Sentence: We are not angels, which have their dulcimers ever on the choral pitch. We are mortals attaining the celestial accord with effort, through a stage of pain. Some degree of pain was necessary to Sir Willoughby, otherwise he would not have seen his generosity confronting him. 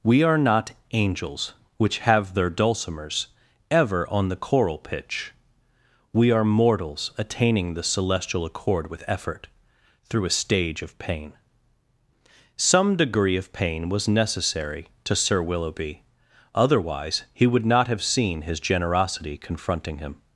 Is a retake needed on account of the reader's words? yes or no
no